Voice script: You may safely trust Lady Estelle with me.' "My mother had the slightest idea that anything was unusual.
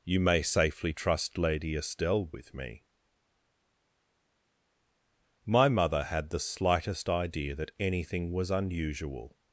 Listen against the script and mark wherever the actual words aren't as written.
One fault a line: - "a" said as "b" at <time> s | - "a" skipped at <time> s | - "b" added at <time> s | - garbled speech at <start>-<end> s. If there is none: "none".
none